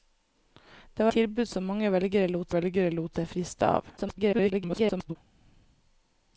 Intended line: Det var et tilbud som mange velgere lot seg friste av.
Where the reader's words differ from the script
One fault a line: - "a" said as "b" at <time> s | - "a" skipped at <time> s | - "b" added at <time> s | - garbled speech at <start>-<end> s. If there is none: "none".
- "et" skipped at 1.1 s
- "velgere lot" added at 2.6 s
- garbled speech at 4.0-5.2 s